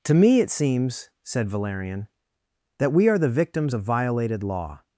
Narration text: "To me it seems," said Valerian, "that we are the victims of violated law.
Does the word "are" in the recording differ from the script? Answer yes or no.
no